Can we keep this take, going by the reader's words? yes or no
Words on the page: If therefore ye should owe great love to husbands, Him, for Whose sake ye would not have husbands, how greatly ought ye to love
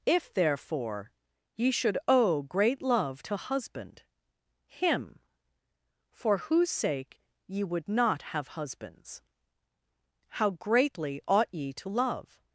no